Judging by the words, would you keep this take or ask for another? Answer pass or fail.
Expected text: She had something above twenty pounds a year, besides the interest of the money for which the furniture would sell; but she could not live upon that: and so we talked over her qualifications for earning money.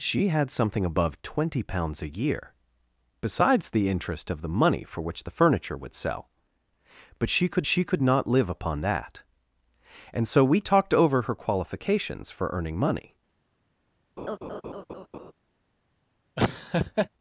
fail